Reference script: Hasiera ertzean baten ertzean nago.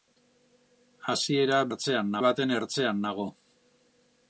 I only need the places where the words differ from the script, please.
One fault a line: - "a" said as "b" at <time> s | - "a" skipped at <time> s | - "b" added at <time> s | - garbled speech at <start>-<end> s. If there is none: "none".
none